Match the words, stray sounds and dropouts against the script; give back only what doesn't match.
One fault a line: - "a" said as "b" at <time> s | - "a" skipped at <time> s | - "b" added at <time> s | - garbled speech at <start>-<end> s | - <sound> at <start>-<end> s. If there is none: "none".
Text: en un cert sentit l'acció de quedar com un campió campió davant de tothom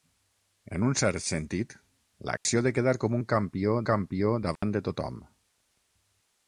- dropout at 2.4-2.5 s
- dropout at 4.6-4.6 s